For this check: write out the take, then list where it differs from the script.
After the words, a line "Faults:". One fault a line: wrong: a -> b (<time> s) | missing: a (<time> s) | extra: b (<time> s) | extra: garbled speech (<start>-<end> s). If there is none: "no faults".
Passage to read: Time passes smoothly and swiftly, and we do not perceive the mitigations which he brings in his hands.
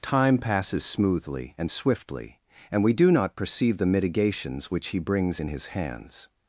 Time passes smoothly and swiftly, and we do not perceive the mitigations which he brings in his hands.
Faults:
no faults